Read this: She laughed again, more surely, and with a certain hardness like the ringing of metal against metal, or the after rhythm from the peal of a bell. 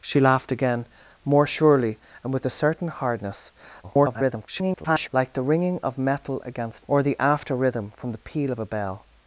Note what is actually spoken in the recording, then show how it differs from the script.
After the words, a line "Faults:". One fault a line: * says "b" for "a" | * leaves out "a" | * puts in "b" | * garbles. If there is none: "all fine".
She laughed again, more surely, and with a certain hardness [garbled] like the ringing of metal against or the after rhythm from the peal of a bell.
Faults:
* garbles
* leaves out "metal"